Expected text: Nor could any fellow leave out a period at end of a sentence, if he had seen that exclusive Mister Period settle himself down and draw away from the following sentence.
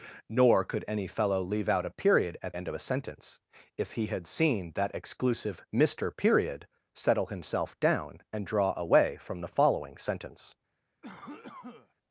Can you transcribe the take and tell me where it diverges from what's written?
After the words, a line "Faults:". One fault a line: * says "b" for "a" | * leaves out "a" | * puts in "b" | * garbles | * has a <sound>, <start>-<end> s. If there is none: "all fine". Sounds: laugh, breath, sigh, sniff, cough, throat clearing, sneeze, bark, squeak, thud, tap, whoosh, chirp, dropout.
Nor could any fellow leave out a period at end of a sentence, if he had seen that exclusive Mister Period settle himself down and draw away from the following sentence.
Faults:
* has a cough, 11.0-11.9 s